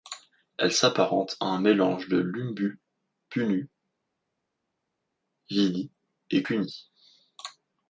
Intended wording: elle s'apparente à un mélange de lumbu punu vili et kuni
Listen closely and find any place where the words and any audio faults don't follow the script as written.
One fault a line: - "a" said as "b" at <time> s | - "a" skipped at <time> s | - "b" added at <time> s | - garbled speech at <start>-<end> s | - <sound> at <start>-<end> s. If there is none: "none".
none